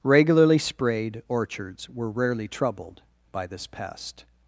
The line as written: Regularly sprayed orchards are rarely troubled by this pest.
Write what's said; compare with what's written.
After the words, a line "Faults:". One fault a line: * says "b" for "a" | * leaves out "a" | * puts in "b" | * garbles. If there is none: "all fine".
Regularly sprayed orchards were rarely troubled by this pest.
Faults:
* says "were" for "are"